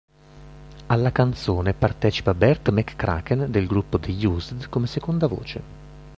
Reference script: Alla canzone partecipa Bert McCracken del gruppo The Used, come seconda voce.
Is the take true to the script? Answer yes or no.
yes